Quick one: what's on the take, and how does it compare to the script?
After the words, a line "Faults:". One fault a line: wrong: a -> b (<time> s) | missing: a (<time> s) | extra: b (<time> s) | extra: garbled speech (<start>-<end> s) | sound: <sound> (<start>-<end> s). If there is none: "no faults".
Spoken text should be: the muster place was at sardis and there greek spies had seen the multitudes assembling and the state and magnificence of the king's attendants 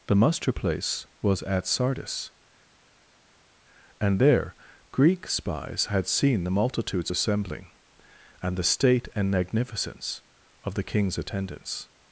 the muster place was at sardis and there greek spies had seen the multitudes assembling and the state and magnificence of the king's attendants
Faults:
no faults